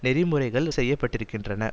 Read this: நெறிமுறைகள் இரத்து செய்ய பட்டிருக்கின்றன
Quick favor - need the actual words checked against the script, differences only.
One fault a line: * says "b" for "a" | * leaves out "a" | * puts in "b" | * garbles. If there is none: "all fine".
* leaves out "இரத்து"